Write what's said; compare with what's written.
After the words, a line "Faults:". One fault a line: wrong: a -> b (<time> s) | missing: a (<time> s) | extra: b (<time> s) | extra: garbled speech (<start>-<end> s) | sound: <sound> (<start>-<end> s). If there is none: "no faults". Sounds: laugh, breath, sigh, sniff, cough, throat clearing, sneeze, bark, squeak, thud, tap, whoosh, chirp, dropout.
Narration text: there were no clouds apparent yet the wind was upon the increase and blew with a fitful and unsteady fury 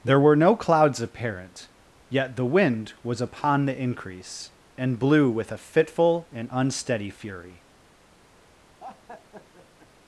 there were no clouds apparent yet the wind was upon the increase and blew with a fitful and unsteady fury
Faults:
sound: laugh (8.8-9.9 s)